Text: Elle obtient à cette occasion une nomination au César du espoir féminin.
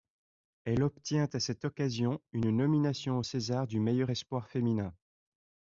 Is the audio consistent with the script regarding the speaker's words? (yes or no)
no